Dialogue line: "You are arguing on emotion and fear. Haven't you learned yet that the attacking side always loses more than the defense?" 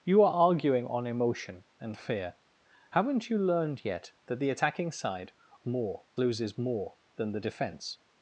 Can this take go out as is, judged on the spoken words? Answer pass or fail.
fail